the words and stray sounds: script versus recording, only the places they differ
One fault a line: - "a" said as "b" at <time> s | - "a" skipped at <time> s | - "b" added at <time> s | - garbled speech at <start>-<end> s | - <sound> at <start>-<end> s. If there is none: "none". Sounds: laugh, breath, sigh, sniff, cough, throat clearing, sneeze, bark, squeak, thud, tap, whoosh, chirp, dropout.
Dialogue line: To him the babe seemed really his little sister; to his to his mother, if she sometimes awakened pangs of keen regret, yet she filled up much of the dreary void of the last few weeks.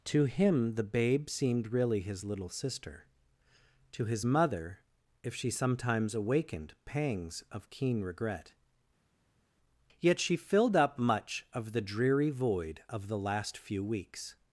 - "to his" skipped at 4.3 s